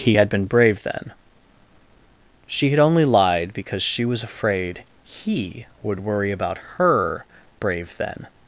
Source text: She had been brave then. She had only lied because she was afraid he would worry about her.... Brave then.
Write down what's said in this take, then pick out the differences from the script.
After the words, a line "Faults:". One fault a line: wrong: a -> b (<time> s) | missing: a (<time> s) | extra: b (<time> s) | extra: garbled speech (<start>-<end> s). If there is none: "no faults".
He had been brave then. She had only lied because she was afraid he would worry about her.... Brave then.
Faults:
wrong: She -> He (0.0 s)